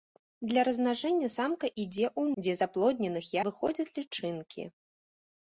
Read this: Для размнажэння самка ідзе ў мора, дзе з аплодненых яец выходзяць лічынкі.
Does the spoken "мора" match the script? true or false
false